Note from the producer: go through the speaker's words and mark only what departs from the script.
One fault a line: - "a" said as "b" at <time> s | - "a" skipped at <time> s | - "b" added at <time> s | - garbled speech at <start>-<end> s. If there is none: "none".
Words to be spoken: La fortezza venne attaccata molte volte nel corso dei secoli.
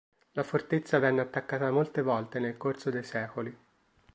none